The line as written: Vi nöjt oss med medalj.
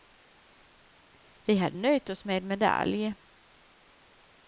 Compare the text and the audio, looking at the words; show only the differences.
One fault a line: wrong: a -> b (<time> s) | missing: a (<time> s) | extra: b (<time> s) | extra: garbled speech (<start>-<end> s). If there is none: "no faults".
extra: hade (1.6 s)